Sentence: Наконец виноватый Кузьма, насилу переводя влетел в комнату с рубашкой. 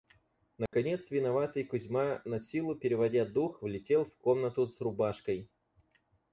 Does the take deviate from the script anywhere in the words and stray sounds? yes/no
yes